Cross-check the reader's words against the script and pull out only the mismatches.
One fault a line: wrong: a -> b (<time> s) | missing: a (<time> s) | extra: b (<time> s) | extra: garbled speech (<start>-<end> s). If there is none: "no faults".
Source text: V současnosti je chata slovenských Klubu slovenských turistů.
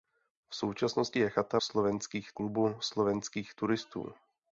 no faults